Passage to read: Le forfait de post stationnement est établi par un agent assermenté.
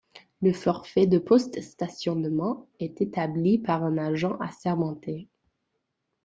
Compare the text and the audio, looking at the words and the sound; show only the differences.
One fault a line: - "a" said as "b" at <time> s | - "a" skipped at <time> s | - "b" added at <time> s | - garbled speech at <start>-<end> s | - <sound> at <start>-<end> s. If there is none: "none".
none